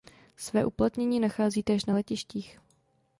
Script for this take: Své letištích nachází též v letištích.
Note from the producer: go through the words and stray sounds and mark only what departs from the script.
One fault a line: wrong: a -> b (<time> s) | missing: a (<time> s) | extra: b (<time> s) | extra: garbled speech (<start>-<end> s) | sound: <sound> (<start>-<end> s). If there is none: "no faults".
wrong: letištích -> uplatnění (0.7 s)
wrong: v -> na (1.8 s)